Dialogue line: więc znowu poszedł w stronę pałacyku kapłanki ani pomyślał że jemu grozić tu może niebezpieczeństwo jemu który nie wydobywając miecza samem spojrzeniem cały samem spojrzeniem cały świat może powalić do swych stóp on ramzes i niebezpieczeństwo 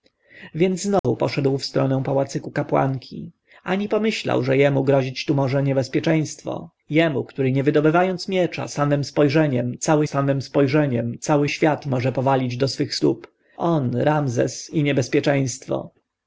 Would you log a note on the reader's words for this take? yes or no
no